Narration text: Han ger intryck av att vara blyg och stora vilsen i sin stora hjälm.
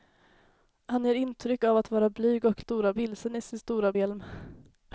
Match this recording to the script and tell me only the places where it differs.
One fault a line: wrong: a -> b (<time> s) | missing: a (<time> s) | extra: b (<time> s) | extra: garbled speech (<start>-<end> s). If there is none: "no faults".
no faults